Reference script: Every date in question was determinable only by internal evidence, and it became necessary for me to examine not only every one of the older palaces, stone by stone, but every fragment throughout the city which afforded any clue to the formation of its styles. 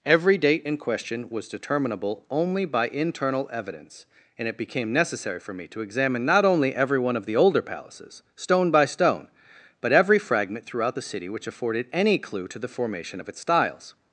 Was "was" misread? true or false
false